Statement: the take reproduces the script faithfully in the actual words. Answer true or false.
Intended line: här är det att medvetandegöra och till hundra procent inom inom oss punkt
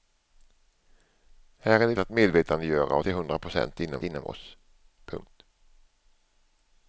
true